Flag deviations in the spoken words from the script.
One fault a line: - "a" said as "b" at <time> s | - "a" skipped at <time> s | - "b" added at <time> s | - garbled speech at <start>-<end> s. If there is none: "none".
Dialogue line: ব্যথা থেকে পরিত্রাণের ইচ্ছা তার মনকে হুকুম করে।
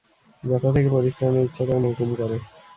- "মনকে" skipped at 1.8 s